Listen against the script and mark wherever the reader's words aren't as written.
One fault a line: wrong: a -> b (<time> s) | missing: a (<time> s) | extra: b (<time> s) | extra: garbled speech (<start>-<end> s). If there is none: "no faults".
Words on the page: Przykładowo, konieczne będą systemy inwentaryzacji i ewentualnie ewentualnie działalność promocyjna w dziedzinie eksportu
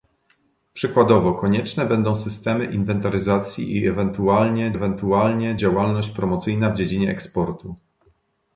no faults